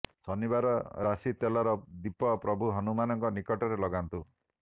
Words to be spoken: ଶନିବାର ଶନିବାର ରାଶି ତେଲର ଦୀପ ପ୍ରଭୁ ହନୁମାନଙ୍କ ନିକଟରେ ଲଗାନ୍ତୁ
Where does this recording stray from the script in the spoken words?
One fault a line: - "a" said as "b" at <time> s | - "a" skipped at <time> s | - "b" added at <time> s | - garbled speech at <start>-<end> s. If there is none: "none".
- "ଶନିବାର" skipped at 0.7 s